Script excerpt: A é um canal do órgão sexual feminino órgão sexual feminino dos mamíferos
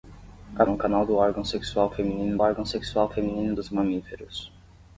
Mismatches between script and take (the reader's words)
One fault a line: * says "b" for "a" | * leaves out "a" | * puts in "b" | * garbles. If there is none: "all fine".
all fine